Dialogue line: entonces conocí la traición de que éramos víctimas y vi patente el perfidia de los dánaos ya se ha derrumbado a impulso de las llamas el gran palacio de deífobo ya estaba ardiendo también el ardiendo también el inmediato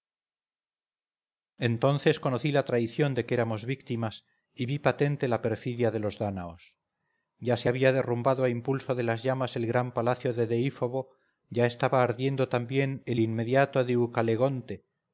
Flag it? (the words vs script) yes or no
yes